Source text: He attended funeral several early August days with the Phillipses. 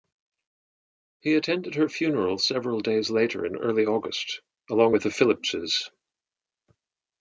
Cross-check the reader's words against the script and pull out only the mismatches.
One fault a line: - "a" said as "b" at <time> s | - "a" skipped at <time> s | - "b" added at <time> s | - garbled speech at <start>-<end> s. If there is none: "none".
- "her" added at 1.8 s
- "days later in" added at 2.8 s
- "days" said as "along" at 4.7 s